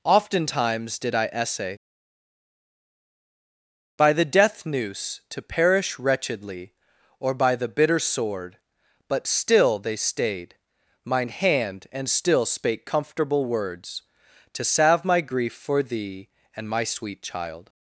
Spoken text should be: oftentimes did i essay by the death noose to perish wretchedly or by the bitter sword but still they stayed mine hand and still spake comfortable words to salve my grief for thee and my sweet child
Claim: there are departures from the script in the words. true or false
false